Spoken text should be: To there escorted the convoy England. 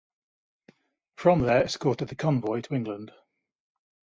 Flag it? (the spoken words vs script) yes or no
yes